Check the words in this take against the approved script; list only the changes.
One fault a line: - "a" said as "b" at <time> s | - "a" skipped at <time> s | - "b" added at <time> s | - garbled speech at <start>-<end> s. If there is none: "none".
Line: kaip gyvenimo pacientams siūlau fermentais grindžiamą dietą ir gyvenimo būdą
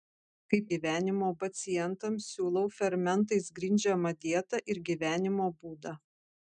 none